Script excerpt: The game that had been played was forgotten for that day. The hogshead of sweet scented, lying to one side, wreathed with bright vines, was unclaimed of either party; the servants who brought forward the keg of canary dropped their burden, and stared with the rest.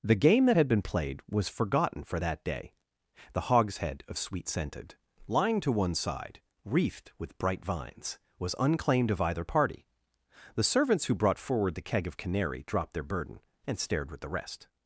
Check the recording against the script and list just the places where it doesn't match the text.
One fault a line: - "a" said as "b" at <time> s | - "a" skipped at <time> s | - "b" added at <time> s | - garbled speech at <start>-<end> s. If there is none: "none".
none